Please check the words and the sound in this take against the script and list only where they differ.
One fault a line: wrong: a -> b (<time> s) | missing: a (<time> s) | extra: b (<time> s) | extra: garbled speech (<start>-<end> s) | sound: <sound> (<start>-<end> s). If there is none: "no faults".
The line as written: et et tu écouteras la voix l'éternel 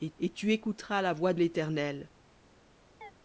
sound: chirp (3.0-3.1 s)